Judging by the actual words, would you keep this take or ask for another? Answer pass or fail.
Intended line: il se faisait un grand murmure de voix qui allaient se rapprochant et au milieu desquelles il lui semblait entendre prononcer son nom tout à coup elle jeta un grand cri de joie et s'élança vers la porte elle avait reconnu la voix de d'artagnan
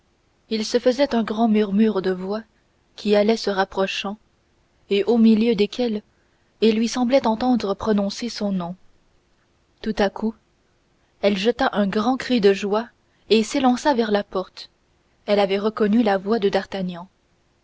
pass